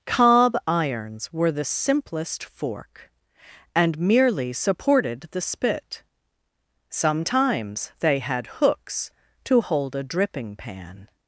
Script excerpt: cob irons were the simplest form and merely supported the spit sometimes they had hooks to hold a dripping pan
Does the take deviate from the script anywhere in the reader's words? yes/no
yes